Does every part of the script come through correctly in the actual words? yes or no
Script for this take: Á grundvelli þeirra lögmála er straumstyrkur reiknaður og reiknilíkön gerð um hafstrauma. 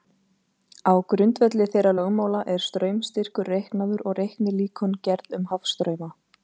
yes